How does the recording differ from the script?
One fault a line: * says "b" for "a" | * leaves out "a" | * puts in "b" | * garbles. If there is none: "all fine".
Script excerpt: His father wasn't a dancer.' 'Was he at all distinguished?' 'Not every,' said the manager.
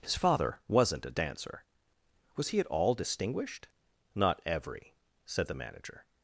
all fine